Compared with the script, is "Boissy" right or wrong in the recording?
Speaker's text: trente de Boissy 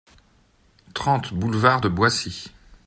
right